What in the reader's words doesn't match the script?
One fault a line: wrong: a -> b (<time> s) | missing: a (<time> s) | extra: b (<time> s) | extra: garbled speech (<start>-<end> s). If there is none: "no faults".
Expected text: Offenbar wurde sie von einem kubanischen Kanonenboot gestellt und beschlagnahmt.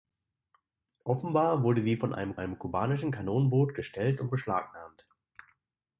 extra: einem (2.4 s)